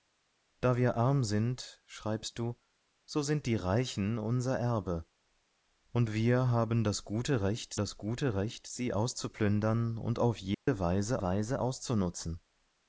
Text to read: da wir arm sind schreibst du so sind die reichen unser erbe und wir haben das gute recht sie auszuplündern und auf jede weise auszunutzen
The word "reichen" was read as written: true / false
true